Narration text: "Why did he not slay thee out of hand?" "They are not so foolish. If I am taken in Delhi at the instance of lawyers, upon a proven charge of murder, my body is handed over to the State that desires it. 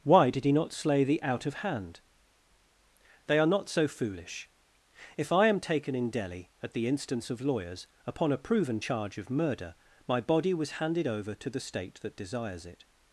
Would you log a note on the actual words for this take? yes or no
yes